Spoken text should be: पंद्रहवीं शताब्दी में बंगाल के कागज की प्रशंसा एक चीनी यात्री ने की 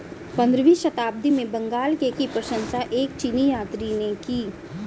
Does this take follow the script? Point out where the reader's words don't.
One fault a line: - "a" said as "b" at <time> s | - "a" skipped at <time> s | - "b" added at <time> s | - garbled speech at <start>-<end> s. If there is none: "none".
- "कागज" skipped at 2.1 s